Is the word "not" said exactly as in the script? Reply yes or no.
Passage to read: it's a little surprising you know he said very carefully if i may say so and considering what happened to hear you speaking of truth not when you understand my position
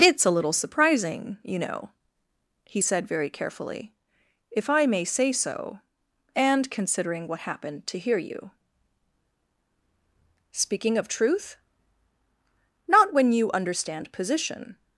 yes